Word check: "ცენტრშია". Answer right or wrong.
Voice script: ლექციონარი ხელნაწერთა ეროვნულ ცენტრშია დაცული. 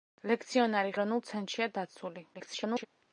right